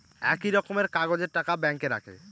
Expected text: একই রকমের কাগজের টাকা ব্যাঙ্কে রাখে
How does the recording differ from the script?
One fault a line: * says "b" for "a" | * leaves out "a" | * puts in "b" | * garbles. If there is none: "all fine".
all fine